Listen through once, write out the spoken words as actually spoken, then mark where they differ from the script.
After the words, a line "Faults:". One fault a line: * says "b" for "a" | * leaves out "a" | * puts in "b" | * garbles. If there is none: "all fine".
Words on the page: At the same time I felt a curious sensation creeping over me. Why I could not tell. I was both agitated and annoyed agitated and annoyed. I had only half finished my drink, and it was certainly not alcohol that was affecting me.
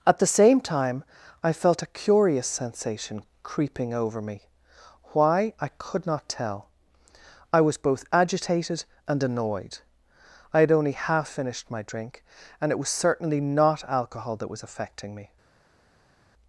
At the same time I felt a curious sensation creeping over me. Why I could not tell. I was both agitated and annoyed. I had only half finished my drink, and it was certainly not alcohol that was affecting me.
Faults:
* leaves out "agitated and annoyed"